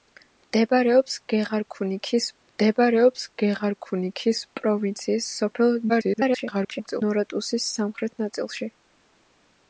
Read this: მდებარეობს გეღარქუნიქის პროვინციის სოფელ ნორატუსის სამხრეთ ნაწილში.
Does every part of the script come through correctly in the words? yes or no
no